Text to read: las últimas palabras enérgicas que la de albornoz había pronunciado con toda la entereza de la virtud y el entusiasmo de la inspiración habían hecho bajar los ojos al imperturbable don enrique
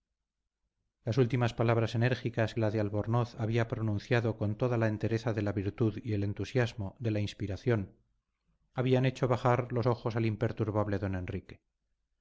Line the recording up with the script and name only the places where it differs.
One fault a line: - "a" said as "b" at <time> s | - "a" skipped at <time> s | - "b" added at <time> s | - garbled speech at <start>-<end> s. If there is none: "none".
- "que" skipped at 2.5 s